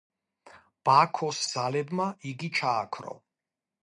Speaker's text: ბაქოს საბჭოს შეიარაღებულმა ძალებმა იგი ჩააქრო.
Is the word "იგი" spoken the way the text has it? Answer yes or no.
yes